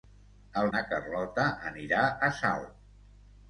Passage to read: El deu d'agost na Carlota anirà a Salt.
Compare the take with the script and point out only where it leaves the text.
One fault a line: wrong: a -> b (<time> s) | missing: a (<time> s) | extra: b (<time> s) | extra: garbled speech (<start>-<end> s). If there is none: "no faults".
missing: deu d'agost (0.7 s)